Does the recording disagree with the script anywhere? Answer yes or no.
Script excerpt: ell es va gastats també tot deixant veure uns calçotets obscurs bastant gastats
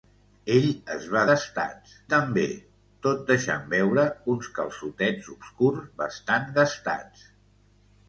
no